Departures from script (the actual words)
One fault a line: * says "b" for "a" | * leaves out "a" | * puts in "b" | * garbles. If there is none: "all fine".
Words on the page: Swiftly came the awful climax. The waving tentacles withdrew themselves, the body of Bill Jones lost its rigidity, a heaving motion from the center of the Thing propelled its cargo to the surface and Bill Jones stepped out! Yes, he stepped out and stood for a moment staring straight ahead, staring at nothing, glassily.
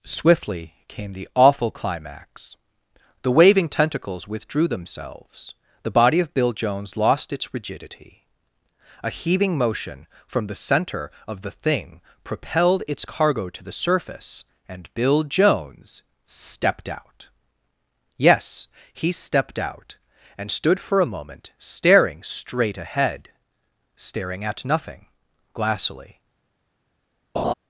all fine